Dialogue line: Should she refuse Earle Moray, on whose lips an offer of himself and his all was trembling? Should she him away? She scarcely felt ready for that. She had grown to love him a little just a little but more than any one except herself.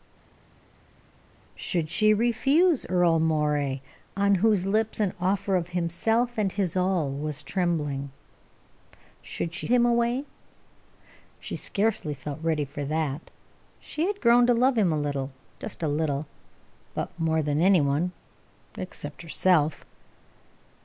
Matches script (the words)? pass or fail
pass